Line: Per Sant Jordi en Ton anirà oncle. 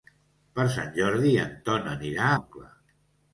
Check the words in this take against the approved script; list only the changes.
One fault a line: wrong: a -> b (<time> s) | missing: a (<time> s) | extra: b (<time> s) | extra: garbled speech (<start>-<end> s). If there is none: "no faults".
no faults